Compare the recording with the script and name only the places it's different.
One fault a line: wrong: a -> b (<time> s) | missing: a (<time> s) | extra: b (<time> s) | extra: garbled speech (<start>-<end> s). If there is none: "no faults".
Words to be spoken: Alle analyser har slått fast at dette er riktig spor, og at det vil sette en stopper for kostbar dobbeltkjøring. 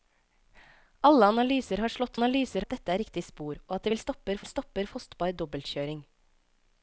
wrong: fast -> analyser (2.2 s)
wrong: sette -> stopper (4.0 s)
missing: for (4.9 s)